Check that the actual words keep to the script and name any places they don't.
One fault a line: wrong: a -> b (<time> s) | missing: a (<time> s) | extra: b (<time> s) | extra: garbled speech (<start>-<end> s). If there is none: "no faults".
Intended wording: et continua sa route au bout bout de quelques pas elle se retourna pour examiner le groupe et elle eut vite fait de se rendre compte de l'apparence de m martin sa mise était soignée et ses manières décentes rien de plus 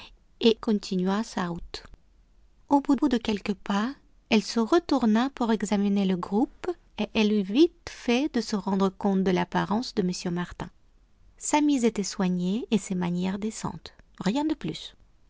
no faults